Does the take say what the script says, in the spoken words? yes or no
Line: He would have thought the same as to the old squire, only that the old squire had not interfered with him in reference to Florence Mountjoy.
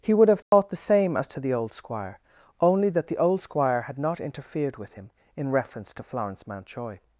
yes